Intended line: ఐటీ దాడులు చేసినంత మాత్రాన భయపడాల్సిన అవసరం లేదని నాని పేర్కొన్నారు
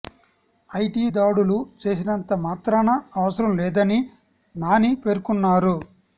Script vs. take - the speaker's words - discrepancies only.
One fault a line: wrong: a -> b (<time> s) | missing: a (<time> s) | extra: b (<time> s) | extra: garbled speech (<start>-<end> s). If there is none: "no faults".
missing: భయపడాల్సిన (2.9 s)